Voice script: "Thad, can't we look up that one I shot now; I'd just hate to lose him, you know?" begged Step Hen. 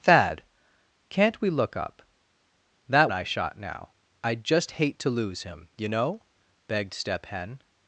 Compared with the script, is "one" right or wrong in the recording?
wrong